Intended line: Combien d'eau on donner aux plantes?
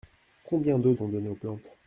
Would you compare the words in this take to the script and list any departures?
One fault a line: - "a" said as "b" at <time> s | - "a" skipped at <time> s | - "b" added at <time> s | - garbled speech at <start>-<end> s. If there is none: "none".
none